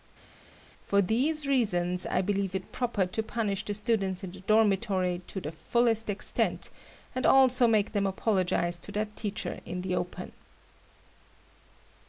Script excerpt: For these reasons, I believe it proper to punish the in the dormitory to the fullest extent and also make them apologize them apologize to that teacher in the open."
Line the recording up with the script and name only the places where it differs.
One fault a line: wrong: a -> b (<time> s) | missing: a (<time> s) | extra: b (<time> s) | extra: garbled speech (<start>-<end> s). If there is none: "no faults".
extra: students (3.7 s)
missing: them apologize (8.8 s)